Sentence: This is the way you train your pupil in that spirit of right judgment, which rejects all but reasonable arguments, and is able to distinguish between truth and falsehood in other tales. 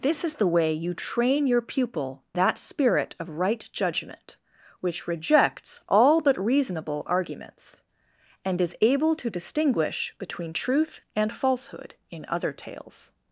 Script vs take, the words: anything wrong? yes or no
yes